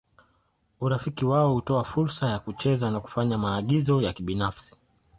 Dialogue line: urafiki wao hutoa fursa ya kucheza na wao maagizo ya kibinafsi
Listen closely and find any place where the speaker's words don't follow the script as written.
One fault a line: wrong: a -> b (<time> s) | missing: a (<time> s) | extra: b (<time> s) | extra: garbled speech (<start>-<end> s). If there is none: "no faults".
wrong: wao -> kufanya (3.0 s)